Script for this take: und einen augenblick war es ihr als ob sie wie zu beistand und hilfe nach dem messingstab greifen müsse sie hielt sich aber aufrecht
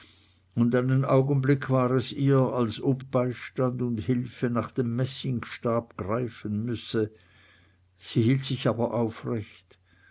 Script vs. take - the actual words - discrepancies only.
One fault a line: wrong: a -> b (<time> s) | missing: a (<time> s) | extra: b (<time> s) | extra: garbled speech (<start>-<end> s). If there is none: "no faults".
missing: sie wie zu (3.0 s)